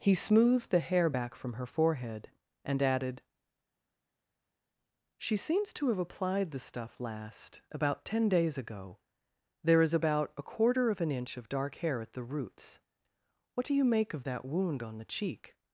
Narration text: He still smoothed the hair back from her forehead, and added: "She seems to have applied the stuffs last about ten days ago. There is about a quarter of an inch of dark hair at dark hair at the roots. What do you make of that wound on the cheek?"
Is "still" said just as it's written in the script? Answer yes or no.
no